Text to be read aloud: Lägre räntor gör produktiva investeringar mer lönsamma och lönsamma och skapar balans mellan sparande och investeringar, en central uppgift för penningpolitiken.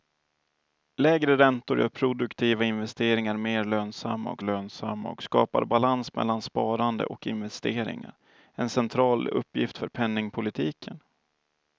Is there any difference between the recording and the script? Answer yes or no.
no